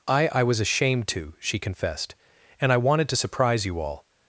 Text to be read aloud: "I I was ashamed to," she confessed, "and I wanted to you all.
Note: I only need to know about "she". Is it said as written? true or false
true